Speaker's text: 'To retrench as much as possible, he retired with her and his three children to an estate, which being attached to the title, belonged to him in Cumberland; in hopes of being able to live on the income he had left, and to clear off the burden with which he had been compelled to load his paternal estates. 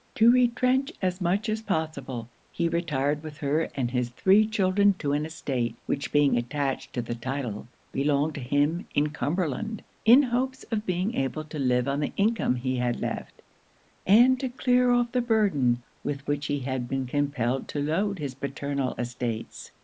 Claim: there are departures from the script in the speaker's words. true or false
false